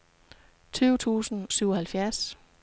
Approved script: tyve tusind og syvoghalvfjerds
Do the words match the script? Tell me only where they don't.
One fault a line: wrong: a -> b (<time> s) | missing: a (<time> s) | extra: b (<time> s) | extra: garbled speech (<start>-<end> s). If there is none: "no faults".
missing: og (1.5 s)